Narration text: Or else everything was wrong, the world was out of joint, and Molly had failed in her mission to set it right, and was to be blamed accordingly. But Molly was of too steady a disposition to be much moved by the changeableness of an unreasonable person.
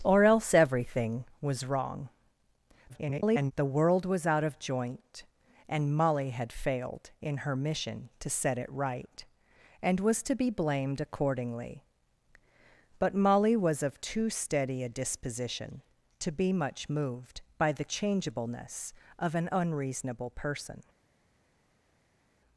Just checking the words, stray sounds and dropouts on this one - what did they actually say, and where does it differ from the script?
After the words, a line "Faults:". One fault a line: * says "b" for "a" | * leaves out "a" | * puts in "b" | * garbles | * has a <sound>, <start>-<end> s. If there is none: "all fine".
Or else everything was wrong, [garbled] the world was out of joint, and Molly had failed in her mission to set it right, and was to be blamed accordingly. But Molly was of too steady a disposition to be much moved by the changeableness of an unreasonable person.
Faults:
* garbles